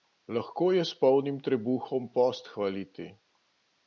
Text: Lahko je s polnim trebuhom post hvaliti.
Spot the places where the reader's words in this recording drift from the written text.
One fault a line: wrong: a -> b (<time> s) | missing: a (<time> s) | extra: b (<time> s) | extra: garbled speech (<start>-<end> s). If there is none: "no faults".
no faults